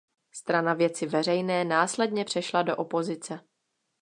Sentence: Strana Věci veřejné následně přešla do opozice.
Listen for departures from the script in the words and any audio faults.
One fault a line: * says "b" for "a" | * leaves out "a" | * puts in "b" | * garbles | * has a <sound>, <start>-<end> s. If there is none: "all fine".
all fine